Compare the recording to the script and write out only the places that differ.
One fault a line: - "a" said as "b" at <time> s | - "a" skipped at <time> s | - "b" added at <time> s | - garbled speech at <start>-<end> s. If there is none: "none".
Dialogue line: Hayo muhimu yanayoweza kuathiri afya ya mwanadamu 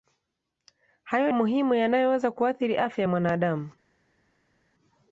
none